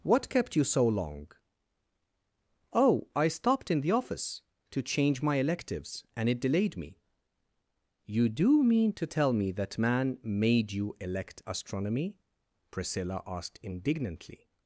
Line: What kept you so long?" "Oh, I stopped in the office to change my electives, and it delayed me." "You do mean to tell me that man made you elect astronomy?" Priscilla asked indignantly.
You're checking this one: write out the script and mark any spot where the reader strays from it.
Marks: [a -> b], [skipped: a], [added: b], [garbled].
What kept you so long?" "Oh, I stopped in the office to change my electives, and it delayed me." "You do mean to tell me that man made you elect astronomy?" Priscilla asked indignantly.